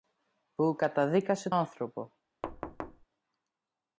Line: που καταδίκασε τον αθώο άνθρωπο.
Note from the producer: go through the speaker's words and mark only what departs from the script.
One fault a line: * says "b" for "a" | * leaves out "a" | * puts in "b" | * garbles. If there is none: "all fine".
* leaves out "τον αθώο"